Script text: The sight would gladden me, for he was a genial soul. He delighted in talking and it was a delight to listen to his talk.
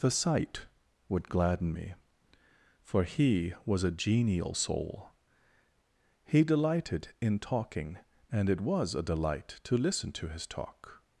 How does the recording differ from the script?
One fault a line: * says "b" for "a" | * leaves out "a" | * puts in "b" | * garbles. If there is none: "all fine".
all fine